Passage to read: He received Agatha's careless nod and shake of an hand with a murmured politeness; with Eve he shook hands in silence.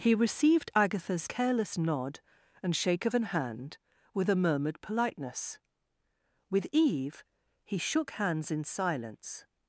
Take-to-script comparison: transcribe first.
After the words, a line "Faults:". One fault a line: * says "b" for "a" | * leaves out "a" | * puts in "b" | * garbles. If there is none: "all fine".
He received Agatha's careless nod and shake of an hand with a murmured politeness; with Eve he shook hands in silence.
Faults:
all fine